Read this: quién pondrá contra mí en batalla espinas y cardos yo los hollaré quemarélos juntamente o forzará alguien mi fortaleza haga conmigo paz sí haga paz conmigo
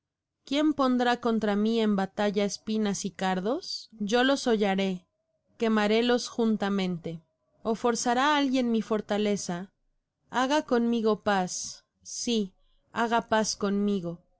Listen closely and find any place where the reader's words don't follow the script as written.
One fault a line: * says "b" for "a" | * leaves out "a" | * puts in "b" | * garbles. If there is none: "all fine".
all fine